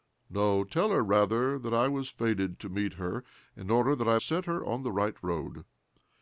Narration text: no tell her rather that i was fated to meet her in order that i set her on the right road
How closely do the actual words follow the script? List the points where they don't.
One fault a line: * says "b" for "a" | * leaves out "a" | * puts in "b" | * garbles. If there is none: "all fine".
all fine